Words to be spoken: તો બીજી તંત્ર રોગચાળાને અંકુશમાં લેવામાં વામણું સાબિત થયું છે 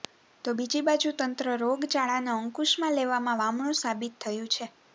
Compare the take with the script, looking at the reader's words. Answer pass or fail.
fail